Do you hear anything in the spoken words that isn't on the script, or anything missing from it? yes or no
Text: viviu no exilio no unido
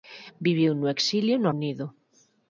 no